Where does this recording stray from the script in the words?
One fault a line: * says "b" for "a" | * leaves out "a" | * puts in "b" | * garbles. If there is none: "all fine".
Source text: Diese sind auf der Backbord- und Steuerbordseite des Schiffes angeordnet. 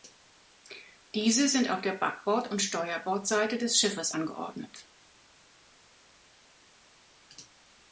all fine